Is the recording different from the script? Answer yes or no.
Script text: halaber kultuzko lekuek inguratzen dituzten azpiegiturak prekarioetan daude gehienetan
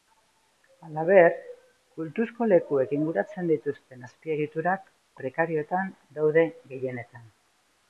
no